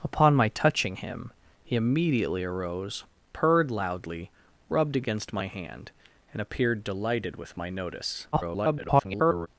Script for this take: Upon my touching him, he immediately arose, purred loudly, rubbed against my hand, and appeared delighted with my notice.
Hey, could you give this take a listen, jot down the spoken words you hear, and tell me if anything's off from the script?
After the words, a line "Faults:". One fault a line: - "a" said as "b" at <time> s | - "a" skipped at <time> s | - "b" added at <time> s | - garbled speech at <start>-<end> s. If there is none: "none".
Upon my touching him, he immediately arose, purred loudly, rubbed against my hand, and appeared delighted with my notice. [garbled]
Faults:
- garbled speech at 8.3-9.5 s